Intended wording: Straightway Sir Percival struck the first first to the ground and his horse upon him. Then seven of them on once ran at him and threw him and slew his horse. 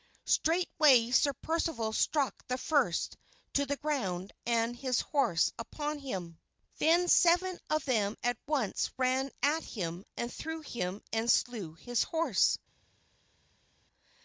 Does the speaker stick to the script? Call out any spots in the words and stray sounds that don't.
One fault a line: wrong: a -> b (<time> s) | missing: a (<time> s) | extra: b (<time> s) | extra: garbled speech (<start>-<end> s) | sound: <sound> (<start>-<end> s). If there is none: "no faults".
missing: first (3.2 s)
wrong: on -> at (8.2 s)